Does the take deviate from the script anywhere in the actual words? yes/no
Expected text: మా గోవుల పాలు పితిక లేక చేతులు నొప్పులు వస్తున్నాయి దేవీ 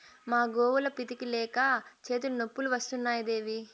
yes